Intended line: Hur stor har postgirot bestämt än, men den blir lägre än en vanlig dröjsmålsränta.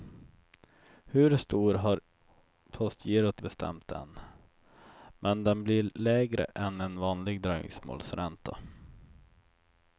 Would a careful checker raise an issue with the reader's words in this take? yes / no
no